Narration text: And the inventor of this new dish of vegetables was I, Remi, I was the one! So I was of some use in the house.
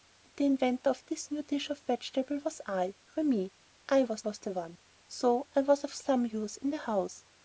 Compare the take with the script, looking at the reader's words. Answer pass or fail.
fail